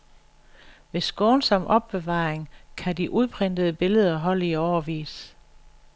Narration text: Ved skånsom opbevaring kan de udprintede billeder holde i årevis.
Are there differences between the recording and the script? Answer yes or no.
no